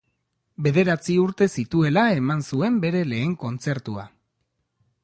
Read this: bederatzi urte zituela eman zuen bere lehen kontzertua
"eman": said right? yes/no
yes